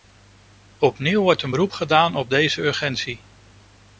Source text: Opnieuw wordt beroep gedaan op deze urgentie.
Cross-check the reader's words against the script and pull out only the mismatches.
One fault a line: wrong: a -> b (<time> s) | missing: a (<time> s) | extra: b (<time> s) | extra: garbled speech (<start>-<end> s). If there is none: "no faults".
extra: een (1.4 s)